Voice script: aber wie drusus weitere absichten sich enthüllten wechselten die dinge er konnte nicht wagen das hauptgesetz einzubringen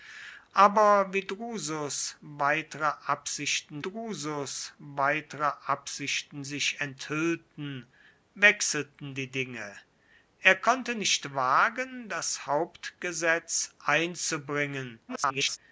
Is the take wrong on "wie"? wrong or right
right